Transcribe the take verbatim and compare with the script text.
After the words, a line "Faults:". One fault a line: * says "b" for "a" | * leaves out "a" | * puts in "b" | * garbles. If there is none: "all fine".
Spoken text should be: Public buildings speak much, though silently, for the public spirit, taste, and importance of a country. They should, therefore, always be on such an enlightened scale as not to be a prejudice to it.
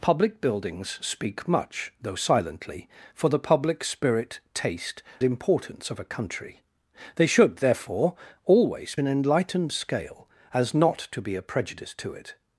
Public buildings speak much, though silently, for the public spirit, taste, importance of a country. They should, therefore, always an enlightened scale as not to be a prejudice to it.
Faults:
* leaves out "and"
* leaves out "be on such"